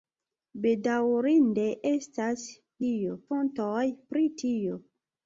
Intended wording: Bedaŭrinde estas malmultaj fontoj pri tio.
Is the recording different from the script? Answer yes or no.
yes